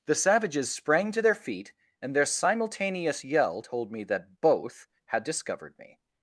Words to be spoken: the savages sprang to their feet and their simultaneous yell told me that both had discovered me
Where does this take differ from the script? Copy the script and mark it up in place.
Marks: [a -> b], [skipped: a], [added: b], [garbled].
the savages sprang to their feet and their simultaneous yell told me that both had discovered me